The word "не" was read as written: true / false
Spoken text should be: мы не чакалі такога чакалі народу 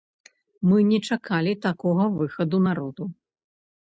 true